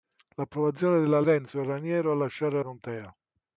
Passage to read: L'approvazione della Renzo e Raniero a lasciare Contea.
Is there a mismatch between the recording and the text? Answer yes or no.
no